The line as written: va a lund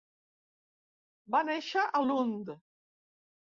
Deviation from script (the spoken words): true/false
true